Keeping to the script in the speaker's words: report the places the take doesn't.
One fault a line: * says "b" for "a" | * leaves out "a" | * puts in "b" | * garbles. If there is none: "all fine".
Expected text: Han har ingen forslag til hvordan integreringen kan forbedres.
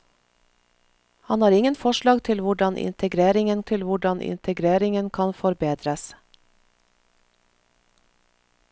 * puts in "til hvordan integreringen"